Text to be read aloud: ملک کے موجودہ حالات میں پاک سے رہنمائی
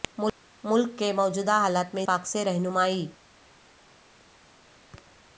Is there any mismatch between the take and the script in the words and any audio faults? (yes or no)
no